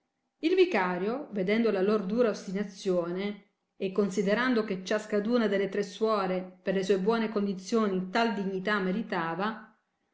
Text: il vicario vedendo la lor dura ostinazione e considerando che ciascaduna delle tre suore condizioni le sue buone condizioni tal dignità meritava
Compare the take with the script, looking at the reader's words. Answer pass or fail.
fail